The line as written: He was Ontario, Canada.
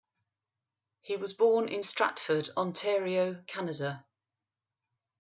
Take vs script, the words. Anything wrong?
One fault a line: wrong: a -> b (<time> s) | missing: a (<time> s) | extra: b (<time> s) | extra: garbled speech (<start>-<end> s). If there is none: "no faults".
extra: born in Stratford (1.3 s)